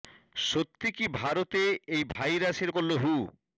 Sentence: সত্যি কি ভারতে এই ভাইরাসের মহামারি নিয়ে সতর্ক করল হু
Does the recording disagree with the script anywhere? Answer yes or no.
yes